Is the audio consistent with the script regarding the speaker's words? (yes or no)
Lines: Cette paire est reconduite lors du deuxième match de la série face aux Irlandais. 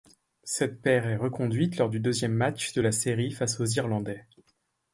yes